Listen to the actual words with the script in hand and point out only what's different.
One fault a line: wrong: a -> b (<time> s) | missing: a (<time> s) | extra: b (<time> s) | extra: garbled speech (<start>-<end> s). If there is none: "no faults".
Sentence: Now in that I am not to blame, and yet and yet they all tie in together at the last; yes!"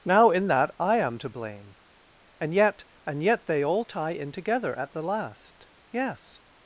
missing: not (1.2 s)